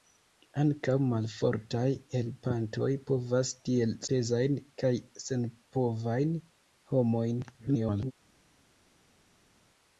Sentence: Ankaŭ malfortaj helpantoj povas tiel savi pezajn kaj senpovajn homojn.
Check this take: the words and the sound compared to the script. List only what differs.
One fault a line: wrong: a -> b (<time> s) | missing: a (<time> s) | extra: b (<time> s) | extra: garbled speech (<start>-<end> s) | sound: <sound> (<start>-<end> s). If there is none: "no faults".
missing: savi (3.9 s)
extra: garbled speech (7.6-8.1 s)